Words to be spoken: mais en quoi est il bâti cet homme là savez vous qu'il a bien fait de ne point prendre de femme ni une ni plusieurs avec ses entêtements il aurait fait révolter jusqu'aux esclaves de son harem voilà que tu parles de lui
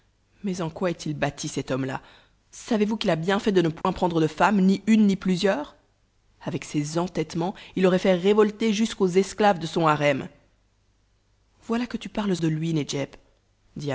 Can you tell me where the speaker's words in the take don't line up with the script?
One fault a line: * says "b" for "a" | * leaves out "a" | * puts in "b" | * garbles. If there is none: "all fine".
all fine